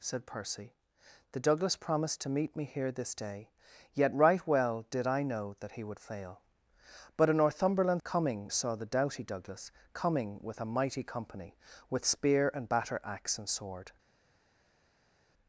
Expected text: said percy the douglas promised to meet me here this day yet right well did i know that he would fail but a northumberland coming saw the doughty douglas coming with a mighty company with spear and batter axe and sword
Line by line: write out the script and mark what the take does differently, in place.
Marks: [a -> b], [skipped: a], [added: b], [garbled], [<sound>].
said percy the douglas promised to meet me here this day yet right well did i know that he would fail but a northumberland coming saw the doughty douglas coming with a mighty company with spear and batter axe and sword